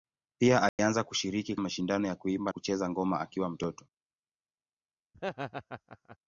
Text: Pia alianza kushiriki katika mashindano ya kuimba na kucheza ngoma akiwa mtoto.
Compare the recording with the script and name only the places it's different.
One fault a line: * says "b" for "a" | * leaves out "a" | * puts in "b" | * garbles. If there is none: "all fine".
* leaves out "katika"
* leaves out "na"